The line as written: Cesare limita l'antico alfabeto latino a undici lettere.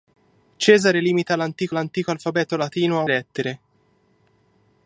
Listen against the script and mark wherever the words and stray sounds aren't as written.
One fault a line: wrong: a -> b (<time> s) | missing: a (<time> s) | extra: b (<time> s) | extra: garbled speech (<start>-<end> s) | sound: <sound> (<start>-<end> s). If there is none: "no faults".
extra: l'antico (1.7 s)
missing: undici (3.0 s)